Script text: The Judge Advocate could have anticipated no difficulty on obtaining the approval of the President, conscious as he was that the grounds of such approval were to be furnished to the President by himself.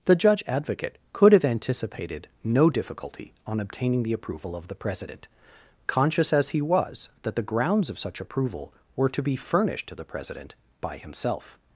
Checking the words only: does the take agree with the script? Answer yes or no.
yes